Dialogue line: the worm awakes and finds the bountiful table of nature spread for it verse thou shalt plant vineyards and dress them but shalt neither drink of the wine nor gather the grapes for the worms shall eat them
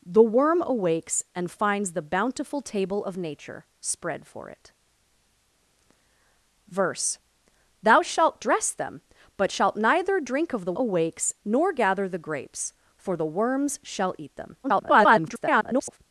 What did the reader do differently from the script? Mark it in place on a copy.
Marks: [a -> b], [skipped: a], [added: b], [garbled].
the worm awakes and finds the bountiful table of nature spread for it verse thou shalt [skipped: plant vineyards and] dress them but shalt neither drink of the [wine -> awakes] nor gather the grapes for the worms shall eat them [garbled]